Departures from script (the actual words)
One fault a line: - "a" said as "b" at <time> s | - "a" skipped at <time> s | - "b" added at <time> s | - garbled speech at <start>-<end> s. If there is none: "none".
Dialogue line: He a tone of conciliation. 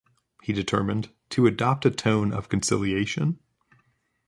- "determined to adopt" added at 0.5 s